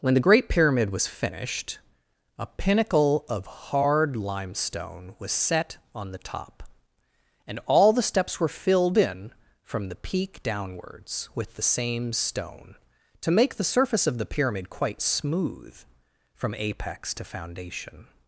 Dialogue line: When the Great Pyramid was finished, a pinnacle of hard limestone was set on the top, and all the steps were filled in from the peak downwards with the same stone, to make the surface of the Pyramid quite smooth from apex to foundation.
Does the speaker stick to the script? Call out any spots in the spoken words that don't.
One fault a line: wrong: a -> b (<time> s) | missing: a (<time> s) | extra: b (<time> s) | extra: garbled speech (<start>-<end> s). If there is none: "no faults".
no faults